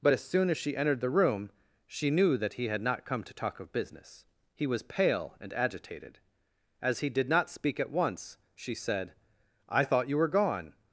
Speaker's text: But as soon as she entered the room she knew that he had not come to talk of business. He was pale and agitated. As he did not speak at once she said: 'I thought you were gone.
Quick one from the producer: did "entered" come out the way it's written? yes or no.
yes